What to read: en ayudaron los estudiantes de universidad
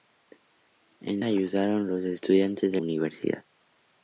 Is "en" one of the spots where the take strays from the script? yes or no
no